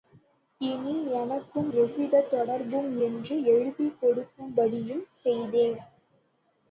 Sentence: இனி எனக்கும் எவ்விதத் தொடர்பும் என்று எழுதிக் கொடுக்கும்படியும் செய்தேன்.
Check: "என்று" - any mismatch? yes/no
no